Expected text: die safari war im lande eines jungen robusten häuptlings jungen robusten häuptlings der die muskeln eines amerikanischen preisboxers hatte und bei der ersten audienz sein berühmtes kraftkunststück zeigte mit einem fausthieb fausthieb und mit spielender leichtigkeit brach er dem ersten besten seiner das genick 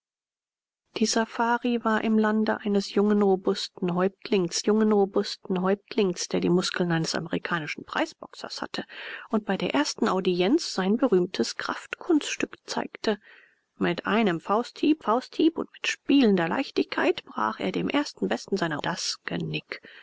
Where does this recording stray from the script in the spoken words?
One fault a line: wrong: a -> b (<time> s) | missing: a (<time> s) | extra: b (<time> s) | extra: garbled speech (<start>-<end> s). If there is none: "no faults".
no faults